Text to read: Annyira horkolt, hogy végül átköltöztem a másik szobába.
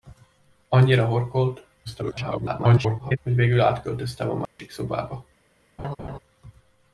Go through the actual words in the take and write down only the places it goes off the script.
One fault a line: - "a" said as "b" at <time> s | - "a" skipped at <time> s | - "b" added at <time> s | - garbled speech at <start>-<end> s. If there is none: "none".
- garbled speech at 1.8-3.2 s